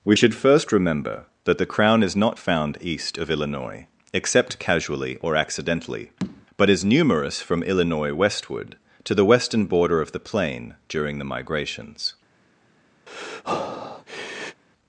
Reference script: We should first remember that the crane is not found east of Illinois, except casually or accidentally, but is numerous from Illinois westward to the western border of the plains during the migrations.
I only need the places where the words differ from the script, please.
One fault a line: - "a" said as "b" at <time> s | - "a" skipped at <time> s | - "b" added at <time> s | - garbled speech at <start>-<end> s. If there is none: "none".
- "crane" said as "crown" at 1.6 s
- "plains" said as "plain" at 10.2 s